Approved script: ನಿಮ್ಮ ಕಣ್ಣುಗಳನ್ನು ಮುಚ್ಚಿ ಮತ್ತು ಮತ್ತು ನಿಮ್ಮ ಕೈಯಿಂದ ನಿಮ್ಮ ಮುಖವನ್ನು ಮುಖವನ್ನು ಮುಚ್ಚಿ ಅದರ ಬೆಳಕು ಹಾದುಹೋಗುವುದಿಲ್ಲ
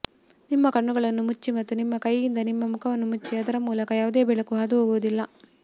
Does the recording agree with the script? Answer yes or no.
no